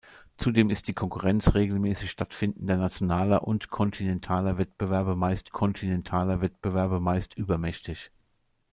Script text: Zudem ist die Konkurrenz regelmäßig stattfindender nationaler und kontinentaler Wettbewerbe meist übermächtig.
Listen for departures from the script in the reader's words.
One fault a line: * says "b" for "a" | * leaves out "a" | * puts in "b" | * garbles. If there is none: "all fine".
* puts in "kontinentaler Wettbewerbe meist"